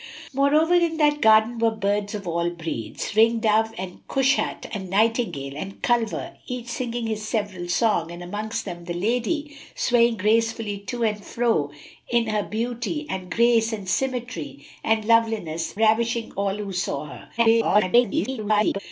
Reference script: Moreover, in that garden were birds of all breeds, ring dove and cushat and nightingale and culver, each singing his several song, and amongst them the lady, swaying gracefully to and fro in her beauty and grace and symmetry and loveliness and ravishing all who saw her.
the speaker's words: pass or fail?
fail